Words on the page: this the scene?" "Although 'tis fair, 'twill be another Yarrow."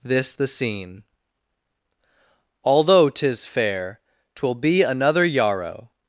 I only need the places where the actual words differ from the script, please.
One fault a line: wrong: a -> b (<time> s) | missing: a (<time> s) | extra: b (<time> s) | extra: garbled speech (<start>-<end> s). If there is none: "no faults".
no faults